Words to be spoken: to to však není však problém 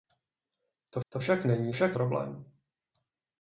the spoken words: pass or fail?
pass